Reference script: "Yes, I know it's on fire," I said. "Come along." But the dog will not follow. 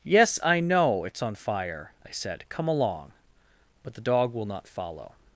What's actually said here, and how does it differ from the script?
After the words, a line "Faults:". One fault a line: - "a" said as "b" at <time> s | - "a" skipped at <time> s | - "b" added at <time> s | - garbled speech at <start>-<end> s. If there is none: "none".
"Yes, I know it's on fire," I said. "Come along." But the dog will not follow.
Faults:
none